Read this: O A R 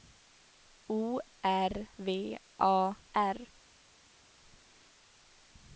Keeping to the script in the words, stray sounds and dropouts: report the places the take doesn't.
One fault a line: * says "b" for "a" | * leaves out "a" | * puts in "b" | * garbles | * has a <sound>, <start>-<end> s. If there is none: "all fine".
* puts in "R V"